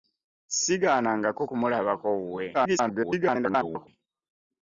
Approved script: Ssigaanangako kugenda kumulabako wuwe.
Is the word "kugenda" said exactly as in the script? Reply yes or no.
no